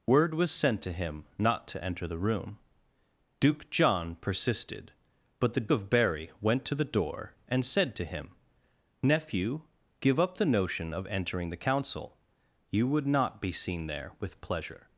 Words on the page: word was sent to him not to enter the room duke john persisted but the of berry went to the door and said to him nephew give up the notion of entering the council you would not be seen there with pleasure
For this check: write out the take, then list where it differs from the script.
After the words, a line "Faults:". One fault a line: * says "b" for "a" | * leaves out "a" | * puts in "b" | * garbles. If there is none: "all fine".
word was sent to him not to enter the room duke john persisted but the of berry went to the door and said to him nephew give up the notion of entering the council you would not be seen there with pleasure
Faults:
all fine